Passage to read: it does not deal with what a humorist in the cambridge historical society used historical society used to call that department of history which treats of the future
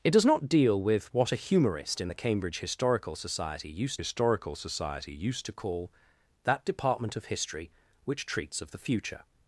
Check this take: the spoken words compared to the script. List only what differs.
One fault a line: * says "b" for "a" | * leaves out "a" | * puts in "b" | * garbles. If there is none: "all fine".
all fine